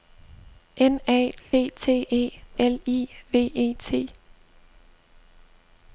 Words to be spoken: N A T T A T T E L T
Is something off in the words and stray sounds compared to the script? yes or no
yes